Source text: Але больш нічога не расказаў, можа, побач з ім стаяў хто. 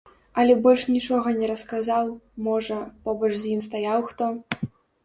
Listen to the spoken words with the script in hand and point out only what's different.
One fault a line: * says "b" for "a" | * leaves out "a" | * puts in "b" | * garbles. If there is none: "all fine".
all fine